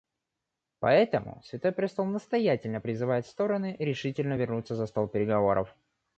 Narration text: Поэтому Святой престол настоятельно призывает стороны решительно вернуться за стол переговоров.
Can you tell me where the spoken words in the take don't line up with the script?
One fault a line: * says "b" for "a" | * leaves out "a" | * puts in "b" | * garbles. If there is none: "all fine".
all fine